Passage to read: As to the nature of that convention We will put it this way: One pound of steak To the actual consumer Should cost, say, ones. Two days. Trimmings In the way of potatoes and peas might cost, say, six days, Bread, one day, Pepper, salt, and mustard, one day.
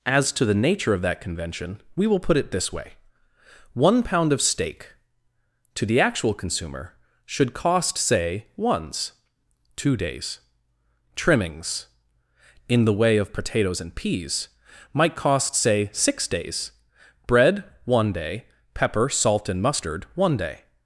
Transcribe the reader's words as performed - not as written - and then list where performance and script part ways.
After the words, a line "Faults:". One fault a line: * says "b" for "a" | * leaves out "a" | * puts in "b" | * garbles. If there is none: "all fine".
As to the nature of that convention We will put it this way: One pound of steak To the actual consumer Should cost, say, ones. Two days. Trimmings In the way of potatoes and peas might cost, say, six days, Bread, one day, Pepper, salt, and mustard, one day.
Faults:
all fine